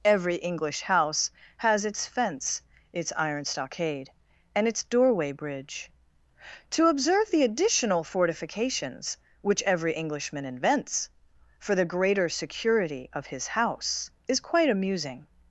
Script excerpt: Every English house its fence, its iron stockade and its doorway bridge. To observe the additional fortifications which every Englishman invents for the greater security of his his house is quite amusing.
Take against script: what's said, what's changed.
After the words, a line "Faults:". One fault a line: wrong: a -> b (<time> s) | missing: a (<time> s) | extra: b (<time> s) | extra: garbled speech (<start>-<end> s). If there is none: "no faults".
Every English house has its fence, its iron stockade and its doorway bridge. To observe the additional fortifications which every Englishman invents for the greater security of his house is quite amusing.
Faults:
extra: has (1.6 s)
missing: his (13.4 s)